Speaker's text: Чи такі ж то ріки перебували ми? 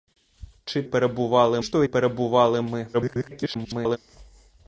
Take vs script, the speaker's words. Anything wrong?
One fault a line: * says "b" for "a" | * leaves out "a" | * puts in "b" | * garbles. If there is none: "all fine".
* says "перебували" for "такі"
* leaves out "ріки"
* garbles